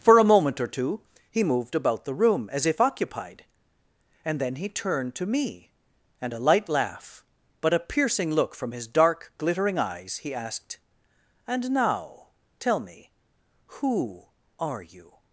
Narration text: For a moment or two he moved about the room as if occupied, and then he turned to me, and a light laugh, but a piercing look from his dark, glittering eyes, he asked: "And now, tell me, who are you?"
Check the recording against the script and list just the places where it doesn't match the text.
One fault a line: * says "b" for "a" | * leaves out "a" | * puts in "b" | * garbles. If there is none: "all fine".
all fine